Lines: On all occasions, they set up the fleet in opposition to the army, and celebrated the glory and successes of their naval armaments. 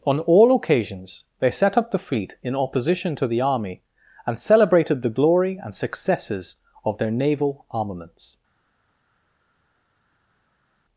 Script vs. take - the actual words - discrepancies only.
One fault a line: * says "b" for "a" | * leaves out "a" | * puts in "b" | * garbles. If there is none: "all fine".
all fine